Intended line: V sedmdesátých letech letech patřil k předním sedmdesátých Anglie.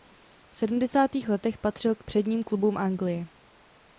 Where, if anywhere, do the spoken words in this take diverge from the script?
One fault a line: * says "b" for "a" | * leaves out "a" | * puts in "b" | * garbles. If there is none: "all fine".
* leaves out "letech"
* says "klubům" for "sedmdesátých"